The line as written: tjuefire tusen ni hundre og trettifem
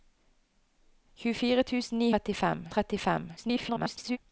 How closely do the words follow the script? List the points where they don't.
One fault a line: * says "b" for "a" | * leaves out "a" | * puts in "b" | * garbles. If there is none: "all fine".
* says "trettifem" for "hundre"
* garbles